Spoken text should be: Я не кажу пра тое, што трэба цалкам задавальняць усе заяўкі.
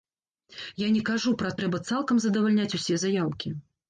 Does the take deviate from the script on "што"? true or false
true